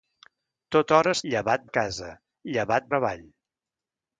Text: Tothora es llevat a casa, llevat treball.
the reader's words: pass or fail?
pass